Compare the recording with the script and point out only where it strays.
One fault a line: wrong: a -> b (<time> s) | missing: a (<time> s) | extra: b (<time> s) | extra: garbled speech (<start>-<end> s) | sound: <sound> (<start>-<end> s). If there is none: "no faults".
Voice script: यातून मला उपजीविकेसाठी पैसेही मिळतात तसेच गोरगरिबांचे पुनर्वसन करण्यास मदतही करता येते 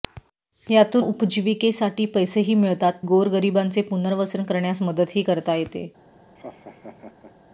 missing: मला (1.1 s)
missing: तसेच (2.9 s)
sound: laugh (6.4-7.3 s)